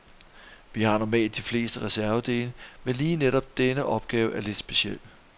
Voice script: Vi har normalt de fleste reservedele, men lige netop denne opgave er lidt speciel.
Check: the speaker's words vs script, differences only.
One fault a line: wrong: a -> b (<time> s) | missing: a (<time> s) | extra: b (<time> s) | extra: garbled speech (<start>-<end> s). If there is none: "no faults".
no faults